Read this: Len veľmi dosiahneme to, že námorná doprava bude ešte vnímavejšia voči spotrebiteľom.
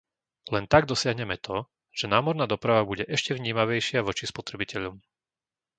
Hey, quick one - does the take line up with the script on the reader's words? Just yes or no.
no